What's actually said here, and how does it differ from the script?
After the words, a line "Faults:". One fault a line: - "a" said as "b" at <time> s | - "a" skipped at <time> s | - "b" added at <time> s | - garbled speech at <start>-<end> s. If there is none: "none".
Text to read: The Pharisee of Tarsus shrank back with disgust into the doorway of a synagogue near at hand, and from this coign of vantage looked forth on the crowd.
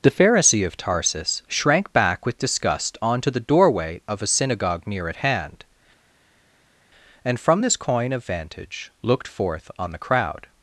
The Pharisee of Tarsus shrank back with disgust onto the doorway of a synagogue near at hand, and from this coign of vantage looked forth on the crowd.
Faults:
- "into" said as "onto" at 3.0 s